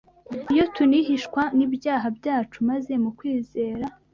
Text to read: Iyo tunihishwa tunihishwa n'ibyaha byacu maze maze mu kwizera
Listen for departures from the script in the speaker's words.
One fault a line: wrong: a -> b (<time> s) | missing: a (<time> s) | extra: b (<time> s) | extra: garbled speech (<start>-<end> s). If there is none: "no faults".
missing: tunihishwa (1.4 s)
missing: maze (2.9 s)